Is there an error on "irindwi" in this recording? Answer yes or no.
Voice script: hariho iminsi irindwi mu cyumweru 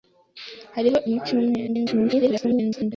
yes